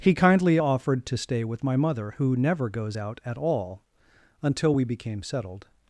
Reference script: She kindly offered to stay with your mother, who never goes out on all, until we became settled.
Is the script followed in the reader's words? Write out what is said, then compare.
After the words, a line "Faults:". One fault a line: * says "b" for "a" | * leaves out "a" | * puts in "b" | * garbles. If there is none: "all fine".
He kindly offered to stay with my mother, who never goes out at all, until we became settled.
Faults:
* says "He" for "She"
* says "my" for "your"
* says "at" for "on"